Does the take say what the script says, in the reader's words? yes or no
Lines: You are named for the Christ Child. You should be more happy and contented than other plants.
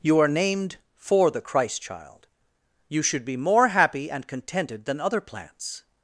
yes